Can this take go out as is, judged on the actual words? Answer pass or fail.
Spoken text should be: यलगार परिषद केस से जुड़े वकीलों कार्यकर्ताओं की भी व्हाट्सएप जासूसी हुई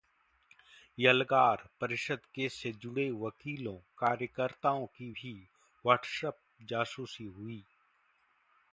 pass